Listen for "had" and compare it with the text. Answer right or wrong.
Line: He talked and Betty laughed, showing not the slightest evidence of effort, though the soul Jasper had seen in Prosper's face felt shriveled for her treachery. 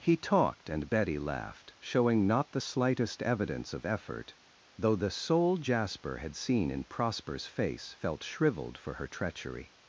right